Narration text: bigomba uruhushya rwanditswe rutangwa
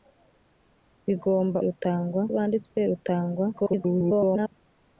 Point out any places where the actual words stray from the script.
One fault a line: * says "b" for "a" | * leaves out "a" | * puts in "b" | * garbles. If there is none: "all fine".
* says "rutangwa" for "uruhushya"
* garbles